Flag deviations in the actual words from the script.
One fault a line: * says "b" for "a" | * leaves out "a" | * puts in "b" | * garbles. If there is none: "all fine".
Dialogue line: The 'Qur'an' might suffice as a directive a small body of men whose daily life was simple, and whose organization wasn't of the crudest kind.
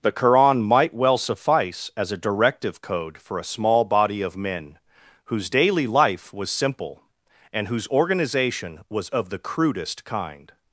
* puts in "well"
* puts in "code for"
* says "was" for "wasn't"